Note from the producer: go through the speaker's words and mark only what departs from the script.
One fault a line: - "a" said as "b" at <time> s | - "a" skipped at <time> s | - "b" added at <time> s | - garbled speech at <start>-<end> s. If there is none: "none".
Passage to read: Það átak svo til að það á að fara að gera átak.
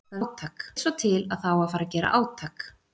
none